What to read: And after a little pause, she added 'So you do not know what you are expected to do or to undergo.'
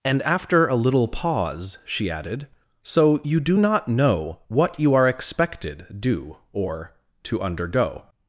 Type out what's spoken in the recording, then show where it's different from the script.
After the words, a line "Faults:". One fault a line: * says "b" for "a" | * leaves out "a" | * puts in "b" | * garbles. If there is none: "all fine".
And after a little pause, she added 'So you do not know what you are expected do or to undergo.'
Faults:
* leaves out "to"